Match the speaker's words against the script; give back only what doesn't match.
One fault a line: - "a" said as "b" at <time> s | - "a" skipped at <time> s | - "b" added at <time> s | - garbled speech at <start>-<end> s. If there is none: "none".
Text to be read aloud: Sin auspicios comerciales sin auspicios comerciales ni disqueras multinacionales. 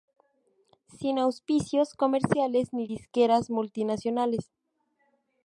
- "sin auspicios comerciales" skipped at 2.7 s